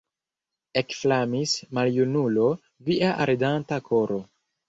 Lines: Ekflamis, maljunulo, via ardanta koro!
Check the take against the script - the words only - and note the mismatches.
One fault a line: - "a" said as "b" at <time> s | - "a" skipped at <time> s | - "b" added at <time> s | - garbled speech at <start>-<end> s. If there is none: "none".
none